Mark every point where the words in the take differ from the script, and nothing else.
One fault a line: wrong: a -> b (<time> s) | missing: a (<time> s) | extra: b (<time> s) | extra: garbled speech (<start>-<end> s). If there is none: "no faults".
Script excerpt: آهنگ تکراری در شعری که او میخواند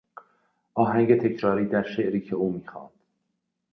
no faults